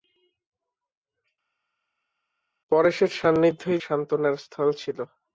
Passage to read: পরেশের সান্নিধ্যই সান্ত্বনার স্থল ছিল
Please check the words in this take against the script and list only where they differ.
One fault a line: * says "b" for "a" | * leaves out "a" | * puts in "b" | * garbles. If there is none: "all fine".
all fine